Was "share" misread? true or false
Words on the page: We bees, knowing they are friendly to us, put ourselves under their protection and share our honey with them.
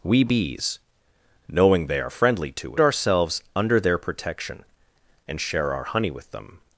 false